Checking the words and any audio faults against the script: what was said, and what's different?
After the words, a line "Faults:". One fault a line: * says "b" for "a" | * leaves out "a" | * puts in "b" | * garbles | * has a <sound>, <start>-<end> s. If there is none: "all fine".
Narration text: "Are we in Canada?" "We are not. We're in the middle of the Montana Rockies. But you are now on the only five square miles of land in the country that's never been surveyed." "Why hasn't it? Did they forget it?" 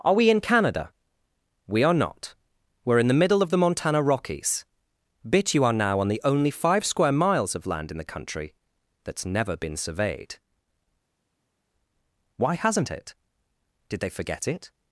"Are we in Canada?" "We are not. We're in the middle of the Montana Rockies. Bit you are now on the only five square miles of land in the country that's never been surveyed." "Why hasn't it? Did they forget it?"
Faults:
* says "Bit" for "But"